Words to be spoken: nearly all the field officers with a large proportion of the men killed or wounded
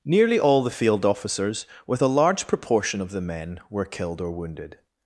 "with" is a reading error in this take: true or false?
false